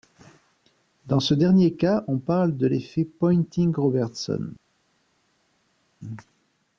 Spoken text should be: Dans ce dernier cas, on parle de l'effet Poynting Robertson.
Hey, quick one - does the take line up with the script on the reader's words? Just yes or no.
yes